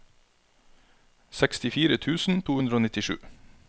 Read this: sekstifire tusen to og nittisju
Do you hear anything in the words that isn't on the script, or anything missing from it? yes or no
yes